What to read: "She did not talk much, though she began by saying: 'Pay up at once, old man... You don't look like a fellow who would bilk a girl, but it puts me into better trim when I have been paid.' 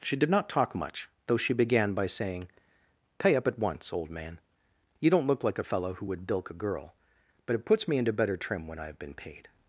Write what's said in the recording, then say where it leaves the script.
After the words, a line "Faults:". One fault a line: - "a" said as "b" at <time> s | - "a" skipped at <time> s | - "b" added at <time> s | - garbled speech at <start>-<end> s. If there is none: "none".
"She did not talk much, though she began by saying: 'Pay up at once, old man... You don't look like a fellow who would bilk a girl, but it puts me into better trim when I have been paid.'
Faults:
none